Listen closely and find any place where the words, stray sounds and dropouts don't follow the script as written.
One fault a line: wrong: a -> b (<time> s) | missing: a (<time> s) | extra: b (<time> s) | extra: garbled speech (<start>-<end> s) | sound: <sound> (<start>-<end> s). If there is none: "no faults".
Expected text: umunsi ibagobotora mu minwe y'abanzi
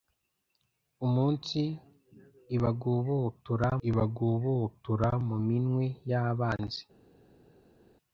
extra: ibagobotora (3.9 s)